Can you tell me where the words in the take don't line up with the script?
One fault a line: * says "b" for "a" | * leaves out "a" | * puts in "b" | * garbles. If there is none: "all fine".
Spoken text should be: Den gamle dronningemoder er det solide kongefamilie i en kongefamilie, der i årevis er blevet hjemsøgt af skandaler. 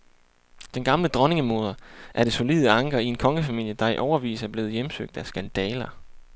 * says "anker" for "kongefamilie"